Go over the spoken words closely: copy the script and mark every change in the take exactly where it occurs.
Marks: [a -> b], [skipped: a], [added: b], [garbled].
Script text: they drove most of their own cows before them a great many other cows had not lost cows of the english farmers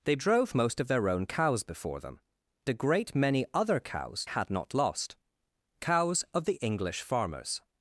they drove most of their own cows before them a great many other cows had not lost cows of the english farmers